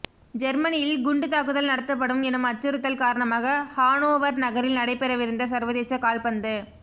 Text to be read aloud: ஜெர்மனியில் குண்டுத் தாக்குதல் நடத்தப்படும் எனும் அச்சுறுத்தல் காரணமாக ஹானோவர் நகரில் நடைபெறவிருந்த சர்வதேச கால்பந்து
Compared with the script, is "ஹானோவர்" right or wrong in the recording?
right